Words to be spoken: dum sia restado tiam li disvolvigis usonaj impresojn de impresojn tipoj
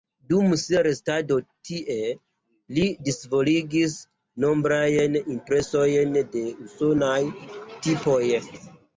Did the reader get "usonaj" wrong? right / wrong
wrong